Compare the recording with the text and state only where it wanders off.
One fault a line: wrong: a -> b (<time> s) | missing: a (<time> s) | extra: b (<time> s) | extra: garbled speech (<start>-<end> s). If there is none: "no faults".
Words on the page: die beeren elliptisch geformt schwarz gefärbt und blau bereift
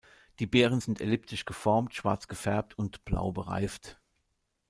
extra: sind (0.8 s)